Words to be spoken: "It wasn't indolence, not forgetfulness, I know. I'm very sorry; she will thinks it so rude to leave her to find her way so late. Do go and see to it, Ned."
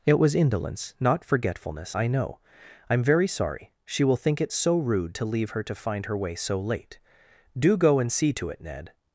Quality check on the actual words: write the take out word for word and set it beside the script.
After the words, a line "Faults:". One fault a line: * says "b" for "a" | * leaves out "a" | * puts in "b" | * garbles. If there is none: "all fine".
"It was indolence, not forgetfulness, I know. I'm very sorry; she will think it so rude to leave her to find her way so late. Do go and see to it, Ned."
Faults:
* says "was" for "wasn't"
* says "think" for "thinks"